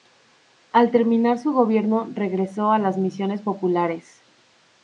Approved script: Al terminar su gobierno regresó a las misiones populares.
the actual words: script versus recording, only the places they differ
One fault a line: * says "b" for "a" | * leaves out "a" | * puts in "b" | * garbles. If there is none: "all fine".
all fine